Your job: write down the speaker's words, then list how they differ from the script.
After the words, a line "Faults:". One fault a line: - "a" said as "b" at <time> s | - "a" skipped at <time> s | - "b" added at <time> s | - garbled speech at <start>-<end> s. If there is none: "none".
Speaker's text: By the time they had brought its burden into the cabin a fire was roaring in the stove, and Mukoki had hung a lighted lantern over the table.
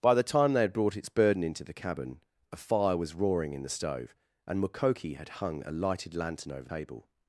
By the time they had brought its burden into the cabin a fire was roaring in the stove, and Mukoki had hung a lighted lantern over table.
Faults:
- "the" skipped at 6.7 s